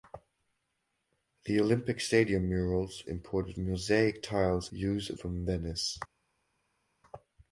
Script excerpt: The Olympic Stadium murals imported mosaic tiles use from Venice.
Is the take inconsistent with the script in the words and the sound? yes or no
no